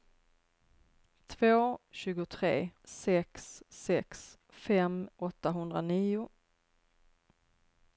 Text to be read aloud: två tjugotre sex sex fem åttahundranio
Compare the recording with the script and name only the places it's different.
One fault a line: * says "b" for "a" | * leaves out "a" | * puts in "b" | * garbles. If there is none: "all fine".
all fine